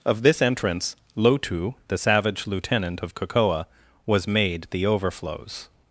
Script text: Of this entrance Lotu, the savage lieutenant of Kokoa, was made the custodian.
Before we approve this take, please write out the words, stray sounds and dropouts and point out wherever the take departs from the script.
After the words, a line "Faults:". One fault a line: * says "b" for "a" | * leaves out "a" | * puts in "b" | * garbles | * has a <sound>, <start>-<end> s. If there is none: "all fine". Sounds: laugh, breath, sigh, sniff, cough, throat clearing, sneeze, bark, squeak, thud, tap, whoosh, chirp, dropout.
Of this entrance Lotu, the savage lieutenant of Kokoa, was made the overflows.
Faults:
* says "overflows" for "custodian"